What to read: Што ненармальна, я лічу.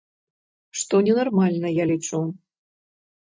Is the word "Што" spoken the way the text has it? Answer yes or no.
yes